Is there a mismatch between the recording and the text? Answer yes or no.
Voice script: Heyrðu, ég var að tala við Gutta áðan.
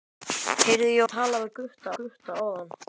yes